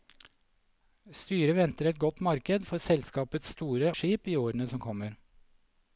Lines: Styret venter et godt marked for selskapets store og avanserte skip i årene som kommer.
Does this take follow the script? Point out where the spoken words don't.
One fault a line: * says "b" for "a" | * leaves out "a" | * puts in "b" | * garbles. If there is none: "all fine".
* leaves out "og avanserte"